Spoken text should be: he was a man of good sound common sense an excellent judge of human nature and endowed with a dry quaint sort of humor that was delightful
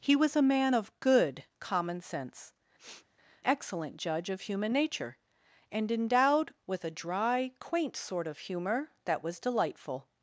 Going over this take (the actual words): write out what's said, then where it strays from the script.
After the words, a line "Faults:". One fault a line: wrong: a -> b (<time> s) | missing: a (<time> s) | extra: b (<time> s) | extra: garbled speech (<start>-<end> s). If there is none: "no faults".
he was a man of good common sense excellent judge of human nature and endowed with a dry quaint sort of humor that was delightful
Faults:
missing: sound (1.4 s)
missing: an (2.5 s)